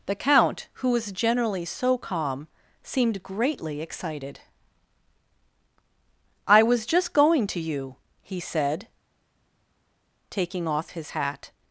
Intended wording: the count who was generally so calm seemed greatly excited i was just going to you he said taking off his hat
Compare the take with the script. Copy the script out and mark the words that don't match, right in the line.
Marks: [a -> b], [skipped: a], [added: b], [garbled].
the count who was generally so calm seemed greatly excited i was just going to you he said taking off his hat